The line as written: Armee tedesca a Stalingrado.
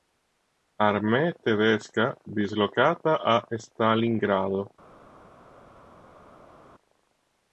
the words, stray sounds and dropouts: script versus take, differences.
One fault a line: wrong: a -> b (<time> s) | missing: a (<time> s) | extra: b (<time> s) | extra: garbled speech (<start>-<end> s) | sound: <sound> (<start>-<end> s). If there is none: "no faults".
extra: dislocata (2.4 s)